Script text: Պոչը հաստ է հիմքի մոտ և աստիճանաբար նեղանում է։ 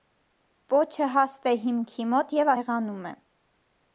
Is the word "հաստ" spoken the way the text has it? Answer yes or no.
yes